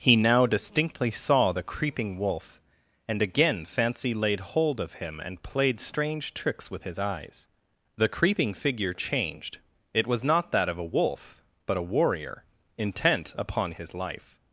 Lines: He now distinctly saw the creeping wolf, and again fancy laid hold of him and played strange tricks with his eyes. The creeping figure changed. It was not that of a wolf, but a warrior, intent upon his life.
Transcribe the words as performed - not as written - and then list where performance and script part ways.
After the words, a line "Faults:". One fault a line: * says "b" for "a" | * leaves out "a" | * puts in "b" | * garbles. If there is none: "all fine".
He now distinctly saw the creeping wolf, and again fancy laid hold of him and played strange tricks with his eyes. The creeping figure changed. It was not that of a wolf, but a warrior, intent upon his life.
Faults:
all fine